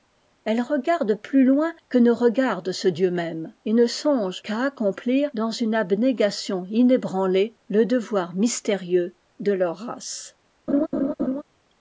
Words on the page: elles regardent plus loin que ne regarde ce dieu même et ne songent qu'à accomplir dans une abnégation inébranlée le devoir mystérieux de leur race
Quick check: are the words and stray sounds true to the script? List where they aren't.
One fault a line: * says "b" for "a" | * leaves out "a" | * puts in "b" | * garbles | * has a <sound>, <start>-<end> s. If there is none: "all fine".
* has a laugh, 10.7-11.4 s